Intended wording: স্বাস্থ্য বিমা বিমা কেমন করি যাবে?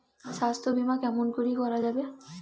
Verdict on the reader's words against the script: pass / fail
fail